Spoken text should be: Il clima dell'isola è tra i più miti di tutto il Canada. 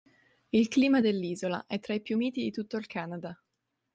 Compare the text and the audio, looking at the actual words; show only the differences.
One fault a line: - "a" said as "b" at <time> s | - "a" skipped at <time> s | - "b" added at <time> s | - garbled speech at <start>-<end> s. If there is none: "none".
none